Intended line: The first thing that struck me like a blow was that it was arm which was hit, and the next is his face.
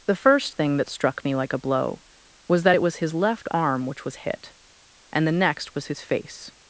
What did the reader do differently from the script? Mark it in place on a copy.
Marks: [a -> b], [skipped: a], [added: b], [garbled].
The first thing that struck me like a blow was that it was [added: his left] arm which was hit, and the next [is -> was] his face.